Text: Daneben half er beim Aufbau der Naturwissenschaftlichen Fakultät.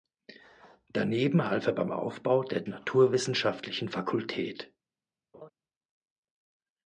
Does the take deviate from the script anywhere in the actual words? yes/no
no